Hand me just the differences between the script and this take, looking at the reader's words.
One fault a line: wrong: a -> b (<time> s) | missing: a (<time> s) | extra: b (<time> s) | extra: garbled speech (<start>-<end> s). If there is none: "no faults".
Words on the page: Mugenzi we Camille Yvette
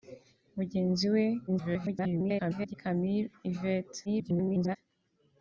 extra: garbled speech (1.5-2.7 s)
extra: garbled speech (4.1-4.8 s)